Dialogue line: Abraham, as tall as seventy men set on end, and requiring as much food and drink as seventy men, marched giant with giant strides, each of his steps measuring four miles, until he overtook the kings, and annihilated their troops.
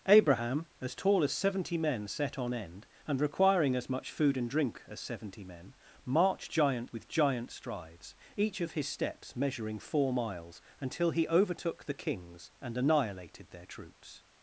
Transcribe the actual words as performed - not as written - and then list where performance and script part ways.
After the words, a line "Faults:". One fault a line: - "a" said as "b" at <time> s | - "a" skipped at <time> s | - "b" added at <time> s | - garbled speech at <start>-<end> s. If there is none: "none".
Abraham, as tall as seventy men set on end, and requiring as much food and drink as seventy men, marched giant with giant strides, each of his steps measuring four miles, until he overtook the kings, and annihilated their troops.
Faults:
none